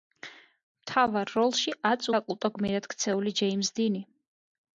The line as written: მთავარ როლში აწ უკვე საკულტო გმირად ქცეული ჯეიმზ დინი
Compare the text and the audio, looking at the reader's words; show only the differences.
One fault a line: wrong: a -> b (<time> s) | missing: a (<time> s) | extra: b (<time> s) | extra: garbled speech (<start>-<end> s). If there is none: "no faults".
missing: უკვე (2.1 s)